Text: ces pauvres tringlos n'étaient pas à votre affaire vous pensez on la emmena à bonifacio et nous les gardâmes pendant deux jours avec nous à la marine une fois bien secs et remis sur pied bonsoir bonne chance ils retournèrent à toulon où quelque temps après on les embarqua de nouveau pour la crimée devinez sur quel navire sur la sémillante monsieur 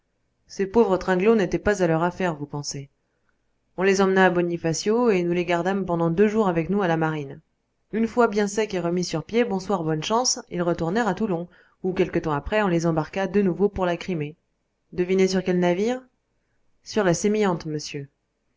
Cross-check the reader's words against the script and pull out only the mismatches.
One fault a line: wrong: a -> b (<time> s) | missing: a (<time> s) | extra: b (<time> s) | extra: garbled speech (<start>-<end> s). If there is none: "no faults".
wrong: votre -> leur (1.9 s)
wrong: la -> les (3.8 s)